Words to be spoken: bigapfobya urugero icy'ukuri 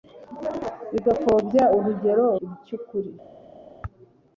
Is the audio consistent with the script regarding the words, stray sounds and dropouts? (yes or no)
yes